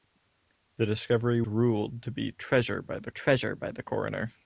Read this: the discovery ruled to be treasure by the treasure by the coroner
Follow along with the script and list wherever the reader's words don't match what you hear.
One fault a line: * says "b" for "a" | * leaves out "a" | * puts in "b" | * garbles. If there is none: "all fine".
all fine